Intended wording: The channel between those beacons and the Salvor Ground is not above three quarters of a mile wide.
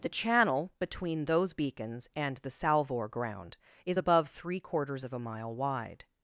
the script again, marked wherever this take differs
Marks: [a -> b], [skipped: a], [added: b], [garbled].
The channel between those beacons and the Salvor Ground is [skipped: not] above three quarters of a mile wide.